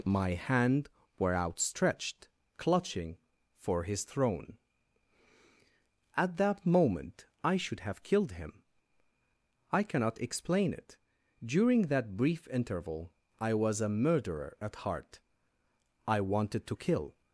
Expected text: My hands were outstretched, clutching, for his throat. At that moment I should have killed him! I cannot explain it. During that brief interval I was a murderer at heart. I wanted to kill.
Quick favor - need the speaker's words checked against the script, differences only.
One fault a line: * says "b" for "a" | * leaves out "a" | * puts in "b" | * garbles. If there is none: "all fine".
* says "hand" for "hands"
* says "throne" for "throat"